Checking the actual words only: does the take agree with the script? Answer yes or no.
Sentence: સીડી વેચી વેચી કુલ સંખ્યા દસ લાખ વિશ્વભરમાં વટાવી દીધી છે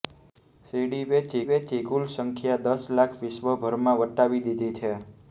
yes